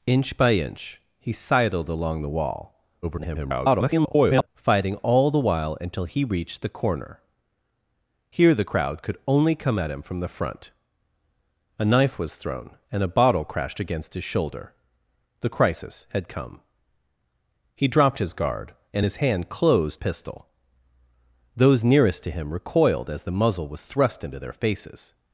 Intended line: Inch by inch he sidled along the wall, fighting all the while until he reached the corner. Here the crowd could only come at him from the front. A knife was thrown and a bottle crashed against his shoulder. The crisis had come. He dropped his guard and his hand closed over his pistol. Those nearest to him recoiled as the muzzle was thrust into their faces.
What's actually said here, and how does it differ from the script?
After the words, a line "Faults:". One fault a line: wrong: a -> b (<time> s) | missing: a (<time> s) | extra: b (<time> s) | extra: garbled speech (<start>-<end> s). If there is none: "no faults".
Inch by inch he sidled along the wall, [garbled] fighting all the while until he reached the corner. Here the crowd could only come at him from the front. A knife was thrown and a bottle crashed against his shoulder. The crisis had come. He dropped his guard and his hand closed pistol. Those nearest to him recoiled as the muzzle was thrust into their faces.
Faults:
extra: garbled speech (3.0-4.5 s)
missing: over his (20.0 s)